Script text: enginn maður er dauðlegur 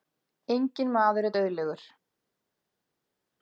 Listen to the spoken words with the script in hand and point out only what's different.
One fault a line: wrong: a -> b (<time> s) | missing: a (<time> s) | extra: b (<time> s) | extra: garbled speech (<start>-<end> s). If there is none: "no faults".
no faults